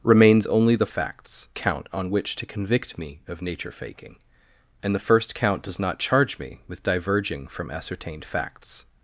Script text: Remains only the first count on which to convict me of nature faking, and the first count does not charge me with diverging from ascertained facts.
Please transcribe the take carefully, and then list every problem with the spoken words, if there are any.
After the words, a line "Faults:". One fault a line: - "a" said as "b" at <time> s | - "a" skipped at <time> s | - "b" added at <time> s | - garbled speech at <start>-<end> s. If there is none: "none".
Remains only the facts count on which to convict me of nature faking, and the first count does not charge me with diverging from ascertained facts.
Faults:
- "first" said as "facts" at 0.9 s